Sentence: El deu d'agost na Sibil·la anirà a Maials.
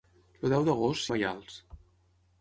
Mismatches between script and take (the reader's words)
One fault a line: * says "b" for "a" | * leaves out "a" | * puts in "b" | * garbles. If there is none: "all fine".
* leaves out "Sibil·la anirà"